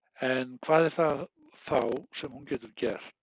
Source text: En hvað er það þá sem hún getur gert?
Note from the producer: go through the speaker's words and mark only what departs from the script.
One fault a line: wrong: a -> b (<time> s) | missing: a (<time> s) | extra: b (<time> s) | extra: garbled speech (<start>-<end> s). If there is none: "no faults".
no faults